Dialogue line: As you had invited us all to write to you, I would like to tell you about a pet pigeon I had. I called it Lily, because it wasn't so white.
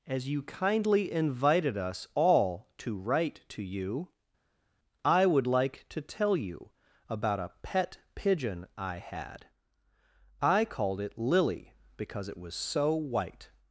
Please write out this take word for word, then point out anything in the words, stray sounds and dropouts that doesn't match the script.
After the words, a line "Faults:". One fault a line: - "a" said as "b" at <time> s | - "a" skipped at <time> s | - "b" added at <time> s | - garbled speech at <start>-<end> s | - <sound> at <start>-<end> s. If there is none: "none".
As you kindly invited us all to write to you, I would like to tell you about a pet pigeon I had. I called it Lily, because it was so white.
Faults:
- "had" said as "kindly" at 0.4 s
- "wasn't" said as "was" at 12.4 s